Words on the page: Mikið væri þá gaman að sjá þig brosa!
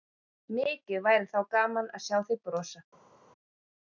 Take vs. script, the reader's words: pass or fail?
pass